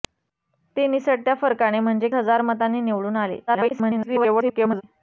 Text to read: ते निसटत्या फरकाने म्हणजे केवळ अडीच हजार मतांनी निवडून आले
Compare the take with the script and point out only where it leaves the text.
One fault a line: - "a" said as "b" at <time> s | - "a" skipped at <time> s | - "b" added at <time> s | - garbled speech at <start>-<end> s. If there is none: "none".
- "केवळ अडीच" skipped at 2.1 s
- garbled speech at 3.5-4.8 s